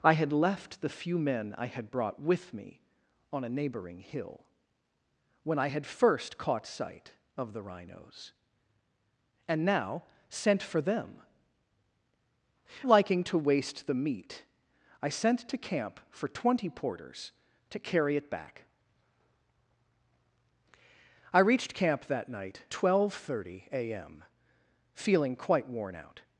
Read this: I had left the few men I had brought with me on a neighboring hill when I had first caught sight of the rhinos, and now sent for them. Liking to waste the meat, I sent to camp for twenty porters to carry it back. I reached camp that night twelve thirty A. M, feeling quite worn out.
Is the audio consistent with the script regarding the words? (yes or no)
yes